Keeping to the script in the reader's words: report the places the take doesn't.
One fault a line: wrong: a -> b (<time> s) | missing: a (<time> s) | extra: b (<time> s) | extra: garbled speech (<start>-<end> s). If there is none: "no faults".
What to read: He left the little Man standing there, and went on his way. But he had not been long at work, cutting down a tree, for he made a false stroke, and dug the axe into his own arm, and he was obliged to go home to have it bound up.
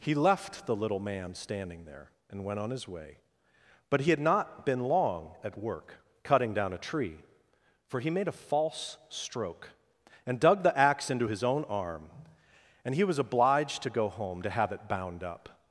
no faults